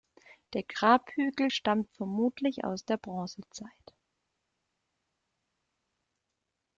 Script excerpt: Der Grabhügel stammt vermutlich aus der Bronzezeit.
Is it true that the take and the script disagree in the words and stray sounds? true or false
false